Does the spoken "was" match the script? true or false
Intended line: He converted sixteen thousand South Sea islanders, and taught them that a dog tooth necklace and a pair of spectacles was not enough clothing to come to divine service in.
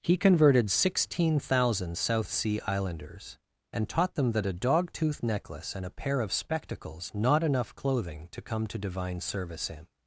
false